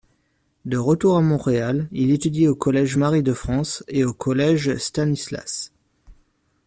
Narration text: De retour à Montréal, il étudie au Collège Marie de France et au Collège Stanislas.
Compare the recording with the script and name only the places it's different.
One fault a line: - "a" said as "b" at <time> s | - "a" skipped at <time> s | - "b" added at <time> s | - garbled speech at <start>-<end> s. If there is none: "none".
none